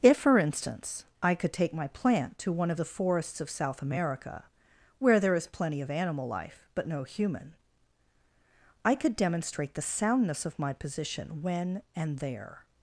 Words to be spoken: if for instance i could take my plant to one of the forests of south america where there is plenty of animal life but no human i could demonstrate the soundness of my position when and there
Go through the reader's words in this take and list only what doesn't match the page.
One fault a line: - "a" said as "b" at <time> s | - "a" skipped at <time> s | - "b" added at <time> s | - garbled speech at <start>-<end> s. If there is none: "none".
none